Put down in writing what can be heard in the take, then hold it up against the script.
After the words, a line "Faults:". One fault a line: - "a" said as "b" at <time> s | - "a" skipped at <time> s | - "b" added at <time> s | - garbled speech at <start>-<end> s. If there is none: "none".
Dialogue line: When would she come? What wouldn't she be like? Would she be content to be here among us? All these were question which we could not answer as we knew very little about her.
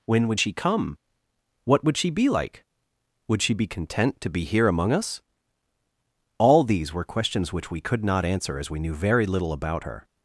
When would she come? What would she be like? Would she be content to be here among us? All these were questions which we could not answer as we knew very little about her.
Faults:
- "wouldn't" said as "would" at 1.8 s
- "question" said as "questions" at 7.0 s